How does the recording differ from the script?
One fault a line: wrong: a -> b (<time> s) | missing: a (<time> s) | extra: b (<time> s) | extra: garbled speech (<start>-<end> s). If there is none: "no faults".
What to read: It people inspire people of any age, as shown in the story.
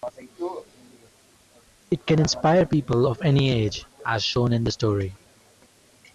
wrong: people -> can (2.1 s)